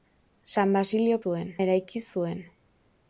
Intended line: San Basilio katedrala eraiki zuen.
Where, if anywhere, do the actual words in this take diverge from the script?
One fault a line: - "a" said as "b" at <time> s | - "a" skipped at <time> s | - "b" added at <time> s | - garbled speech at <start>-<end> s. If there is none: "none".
- "katedrala" said as "zuen" at 1.2 s